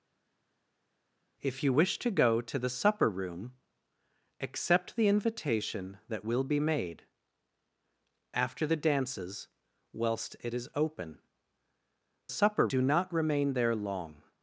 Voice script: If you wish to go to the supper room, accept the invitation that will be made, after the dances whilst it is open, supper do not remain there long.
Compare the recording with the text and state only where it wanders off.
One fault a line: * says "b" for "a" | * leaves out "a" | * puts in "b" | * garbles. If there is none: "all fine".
all fine